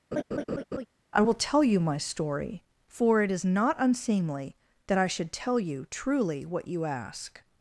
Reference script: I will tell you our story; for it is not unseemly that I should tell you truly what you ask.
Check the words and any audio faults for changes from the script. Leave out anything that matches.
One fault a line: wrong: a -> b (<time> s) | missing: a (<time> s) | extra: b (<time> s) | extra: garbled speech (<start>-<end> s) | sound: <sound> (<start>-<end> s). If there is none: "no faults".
sound: laugh (0.1-0.9 s)
wrong: our -> my (1.8 s)